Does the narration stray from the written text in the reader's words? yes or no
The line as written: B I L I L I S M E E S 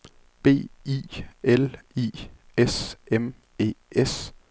yes